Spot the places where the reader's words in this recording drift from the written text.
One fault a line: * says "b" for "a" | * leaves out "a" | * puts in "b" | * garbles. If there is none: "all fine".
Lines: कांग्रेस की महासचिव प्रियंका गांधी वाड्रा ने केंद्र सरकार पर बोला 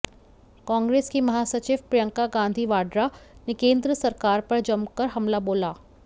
* puts in "जमकर हमला"